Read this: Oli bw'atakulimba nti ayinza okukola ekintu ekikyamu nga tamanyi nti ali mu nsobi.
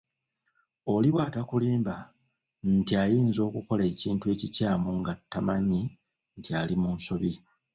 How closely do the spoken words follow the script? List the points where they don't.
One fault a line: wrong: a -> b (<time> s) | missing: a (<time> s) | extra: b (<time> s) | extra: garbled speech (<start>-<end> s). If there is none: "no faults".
no faults